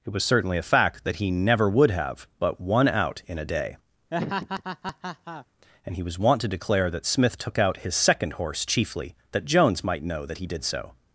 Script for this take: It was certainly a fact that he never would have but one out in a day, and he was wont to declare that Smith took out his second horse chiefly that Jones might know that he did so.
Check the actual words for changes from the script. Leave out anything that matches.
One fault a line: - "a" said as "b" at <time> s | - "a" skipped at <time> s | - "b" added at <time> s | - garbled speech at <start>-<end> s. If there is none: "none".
none